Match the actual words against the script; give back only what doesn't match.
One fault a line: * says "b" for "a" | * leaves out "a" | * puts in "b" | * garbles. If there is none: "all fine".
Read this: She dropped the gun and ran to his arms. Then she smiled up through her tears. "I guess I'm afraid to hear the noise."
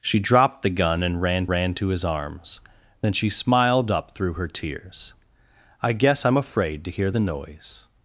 * puts in "ran"